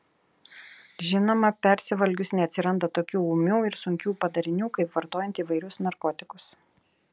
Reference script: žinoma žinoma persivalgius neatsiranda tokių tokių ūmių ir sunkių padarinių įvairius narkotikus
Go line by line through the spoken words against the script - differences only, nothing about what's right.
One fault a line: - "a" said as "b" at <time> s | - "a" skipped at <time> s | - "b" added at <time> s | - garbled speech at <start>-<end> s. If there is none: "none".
- "žinoma" skipped at 1.5 s
- "tokių" skipped at 3.2 s
- "kaip vartojant" added at 4.8 s